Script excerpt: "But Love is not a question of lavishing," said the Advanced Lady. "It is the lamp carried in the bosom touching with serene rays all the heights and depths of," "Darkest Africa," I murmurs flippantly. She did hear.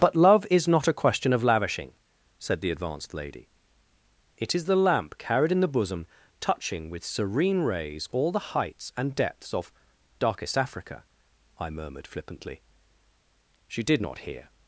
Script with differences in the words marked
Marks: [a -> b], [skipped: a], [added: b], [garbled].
"But Love is not a question of lavishing," said the Advanced Lady. "It is the lamp carried in the bosom touching with serene rays all the heights and depths of," "Darkest Africa," I [murmurs -> murmured] flippantly. She did [added: not] hear.